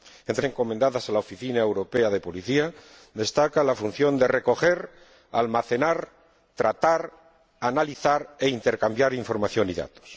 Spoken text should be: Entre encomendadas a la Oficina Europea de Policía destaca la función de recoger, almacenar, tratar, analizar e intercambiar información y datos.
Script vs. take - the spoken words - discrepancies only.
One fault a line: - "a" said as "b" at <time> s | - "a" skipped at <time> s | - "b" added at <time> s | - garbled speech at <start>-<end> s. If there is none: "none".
none